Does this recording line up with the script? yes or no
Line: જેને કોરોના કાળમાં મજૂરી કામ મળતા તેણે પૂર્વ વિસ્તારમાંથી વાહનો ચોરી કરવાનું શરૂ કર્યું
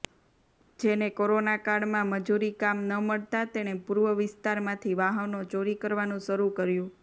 no